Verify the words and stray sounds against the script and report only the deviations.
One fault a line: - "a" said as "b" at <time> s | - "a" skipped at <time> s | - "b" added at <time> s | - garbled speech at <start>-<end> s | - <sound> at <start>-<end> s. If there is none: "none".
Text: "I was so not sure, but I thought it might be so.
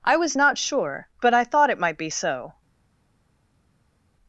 - "so" skipped at 0.3 s